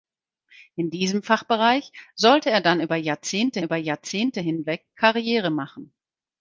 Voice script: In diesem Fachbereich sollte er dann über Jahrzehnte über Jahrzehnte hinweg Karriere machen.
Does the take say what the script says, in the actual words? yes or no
yes